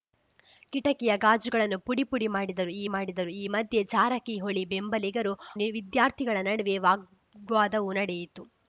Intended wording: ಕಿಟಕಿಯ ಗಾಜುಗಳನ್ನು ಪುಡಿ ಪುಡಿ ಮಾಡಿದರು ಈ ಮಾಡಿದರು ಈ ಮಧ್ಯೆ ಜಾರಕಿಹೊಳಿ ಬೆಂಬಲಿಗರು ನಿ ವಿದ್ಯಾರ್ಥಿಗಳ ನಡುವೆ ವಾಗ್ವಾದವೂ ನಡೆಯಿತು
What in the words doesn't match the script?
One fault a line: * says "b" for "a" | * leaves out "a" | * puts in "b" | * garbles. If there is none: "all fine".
all fine